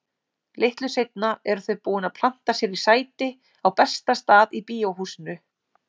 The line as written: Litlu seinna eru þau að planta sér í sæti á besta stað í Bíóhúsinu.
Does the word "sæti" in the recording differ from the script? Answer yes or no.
no